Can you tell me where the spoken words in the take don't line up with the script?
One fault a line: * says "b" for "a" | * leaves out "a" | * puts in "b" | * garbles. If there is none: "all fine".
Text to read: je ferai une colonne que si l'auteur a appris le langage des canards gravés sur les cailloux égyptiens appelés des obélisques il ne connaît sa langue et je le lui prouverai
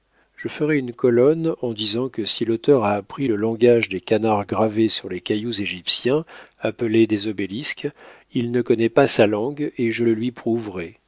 * puts in "en disant"
* puts in "pas"